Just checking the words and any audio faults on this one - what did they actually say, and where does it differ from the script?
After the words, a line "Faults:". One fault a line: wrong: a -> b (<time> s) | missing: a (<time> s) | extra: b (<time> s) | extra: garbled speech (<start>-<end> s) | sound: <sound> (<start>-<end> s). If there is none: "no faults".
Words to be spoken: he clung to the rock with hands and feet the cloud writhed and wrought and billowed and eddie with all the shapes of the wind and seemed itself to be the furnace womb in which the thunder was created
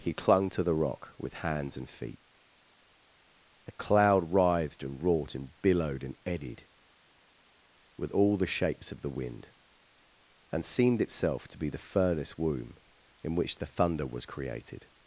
he clung to the rock with hands and feet the cloud writhed and wrought and billowed and eddied with all the shapes of the wind and seemed itself to be the furnace womb in which the thunder was created
Faults:
wrong: eddie -> eddied (6.2 s)